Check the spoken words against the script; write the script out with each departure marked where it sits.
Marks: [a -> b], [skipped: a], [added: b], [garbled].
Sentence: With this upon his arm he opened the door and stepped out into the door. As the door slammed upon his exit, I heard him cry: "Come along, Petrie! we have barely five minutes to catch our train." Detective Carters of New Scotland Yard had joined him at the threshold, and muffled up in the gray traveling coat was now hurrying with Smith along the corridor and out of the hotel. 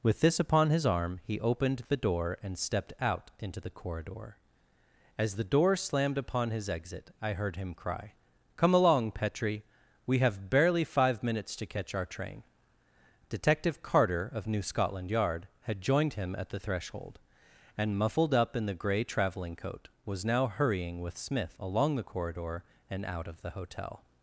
With this upon his arm he opened the door and stepped out into the [door. -> corridor] As the door slammed upon his exit, I heard him cry: "Come along, Petrie! we have barely five minutes to catch our train." Detective [Carters -> Carter] of New Scotland Yard had joined him at the threshold, and muffled up in the gray traveling coat was now hurrying with Smith along the corridor and out of the hotel.